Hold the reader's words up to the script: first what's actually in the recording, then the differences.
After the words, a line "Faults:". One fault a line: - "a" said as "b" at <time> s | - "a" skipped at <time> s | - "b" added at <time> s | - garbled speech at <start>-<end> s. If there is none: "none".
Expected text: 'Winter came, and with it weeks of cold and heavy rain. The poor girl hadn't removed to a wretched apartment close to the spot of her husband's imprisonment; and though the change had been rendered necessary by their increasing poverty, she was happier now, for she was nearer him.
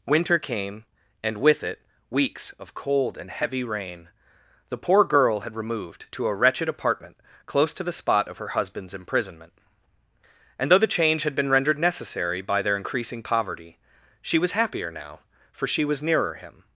'Winter came, and with it weeks of cold and heavy rain. The poor girl had removed to a wretched apartment close to the spot of her husband's imprisonment; and though the change had been rendered necessary by their increasing poverty, she was happier now, for she was nearer him.
Faults:
- "hadn't" said as "had" at 5.4 s